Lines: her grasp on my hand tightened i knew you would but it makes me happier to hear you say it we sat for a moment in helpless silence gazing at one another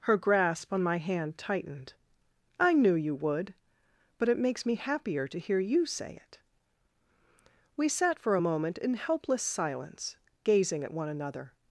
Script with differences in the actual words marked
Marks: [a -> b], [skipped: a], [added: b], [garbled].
her grasp on my hand tightened i knew you would but it makes me happier to hear you say it we sat for a moment in helpless silence gazing at one another